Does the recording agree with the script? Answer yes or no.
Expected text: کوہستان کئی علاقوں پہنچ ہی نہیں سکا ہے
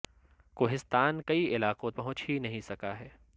yes